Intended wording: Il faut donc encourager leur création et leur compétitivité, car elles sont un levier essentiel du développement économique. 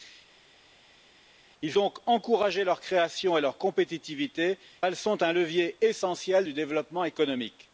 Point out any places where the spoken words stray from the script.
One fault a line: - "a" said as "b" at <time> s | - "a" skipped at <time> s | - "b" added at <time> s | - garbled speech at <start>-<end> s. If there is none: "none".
- "faut" skipped at 1.7 s
- "car" skipped at 4.6 s